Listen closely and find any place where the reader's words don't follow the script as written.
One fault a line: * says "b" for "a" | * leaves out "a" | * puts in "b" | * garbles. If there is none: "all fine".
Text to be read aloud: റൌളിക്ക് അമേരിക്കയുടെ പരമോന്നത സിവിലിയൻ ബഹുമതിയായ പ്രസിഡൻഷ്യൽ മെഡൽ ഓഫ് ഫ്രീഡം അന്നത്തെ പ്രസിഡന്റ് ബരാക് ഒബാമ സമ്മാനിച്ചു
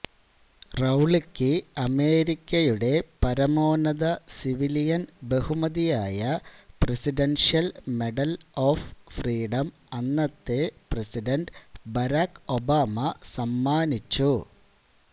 all fine